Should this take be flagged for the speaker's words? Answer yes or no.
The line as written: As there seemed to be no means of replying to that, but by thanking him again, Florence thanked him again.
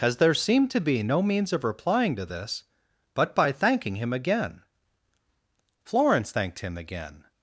yes